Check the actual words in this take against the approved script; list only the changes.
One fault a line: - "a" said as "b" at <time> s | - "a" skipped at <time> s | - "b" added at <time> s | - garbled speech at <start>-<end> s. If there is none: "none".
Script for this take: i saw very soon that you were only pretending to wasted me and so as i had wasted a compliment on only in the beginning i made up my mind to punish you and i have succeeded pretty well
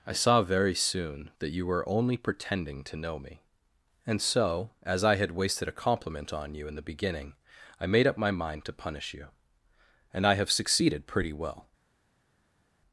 - "wasted" said as "know" at 3.0 s
- "only" said as "you" at 6.5 s